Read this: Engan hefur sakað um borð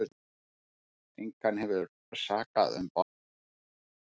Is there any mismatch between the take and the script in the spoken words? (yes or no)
no